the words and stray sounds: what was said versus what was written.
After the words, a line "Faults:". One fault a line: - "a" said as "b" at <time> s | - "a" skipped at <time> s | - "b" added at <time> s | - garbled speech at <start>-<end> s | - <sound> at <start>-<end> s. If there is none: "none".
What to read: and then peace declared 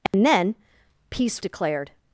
and then peace declared
Faults:
- dropout at 0.1-0.1 s